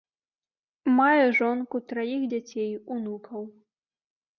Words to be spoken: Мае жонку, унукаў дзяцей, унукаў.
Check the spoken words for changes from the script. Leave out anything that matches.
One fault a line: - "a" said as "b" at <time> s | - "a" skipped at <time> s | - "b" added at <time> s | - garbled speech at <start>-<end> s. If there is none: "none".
- "унукаў" said as "траіх" at 1.9 s